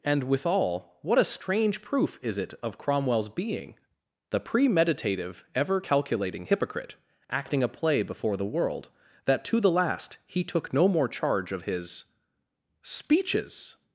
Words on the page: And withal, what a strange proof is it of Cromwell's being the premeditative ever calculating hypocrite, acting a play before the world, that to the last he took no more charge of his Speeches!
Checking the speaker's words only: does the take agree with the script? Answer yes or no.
yes